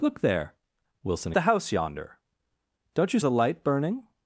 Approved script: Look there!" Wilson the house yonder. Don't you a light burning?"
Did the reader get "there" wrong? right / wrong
right